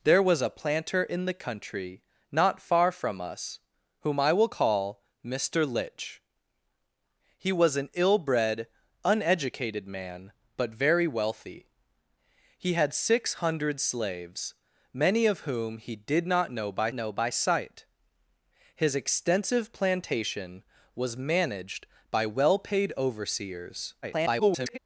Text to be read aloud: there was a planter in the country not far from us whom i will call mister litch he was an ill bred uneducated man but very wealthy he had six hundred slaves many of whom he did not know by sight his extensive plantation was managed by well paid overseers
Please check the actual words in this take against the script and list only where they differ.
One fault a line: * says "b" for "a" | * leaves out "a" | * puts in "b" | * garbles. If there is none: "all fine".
* puts in "know by"
* garbles